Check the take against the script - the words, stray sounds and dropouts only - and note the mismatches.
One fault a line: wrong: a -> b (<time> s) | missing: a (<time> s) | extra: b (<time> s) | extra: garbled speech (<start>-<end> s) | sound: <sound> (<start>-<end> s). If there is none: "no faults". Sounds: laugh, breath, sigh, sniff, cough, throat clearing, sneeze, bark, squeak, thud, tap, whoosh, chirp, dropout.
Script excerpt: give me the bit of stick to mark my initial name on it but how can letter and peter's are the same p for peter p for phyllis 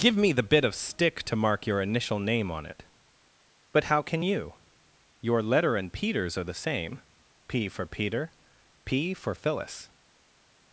wrong: my -> your (1.7 s)
extra: you your (4.2 s)